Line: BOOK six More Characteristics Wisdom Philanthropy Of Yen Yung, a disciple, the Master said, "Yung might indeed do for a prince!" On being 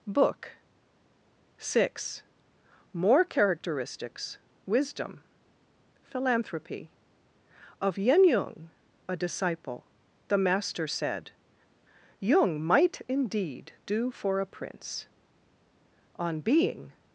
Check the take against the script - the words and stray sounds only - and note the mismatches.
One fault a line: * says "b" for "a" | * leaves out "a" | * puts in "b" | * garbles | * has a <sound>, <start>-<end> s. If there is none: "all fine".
all fine